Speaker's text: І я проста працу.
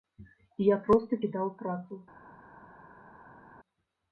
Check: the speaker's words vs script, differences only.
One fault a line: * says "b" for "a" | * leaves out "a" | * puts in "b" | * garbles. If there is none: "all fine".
* puts in "кідаў"